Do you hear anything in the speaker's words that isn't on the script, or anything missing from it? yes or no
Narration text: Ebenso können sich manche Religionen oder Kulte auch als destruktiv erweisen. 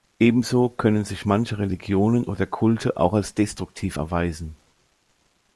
no